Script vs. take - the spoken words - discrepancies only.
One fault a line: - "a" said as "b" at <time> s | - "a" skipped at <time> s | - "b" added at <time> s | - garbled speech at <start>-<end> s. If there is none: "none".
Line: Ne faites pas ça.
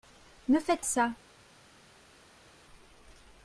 - "pas" skipped at 0.8 s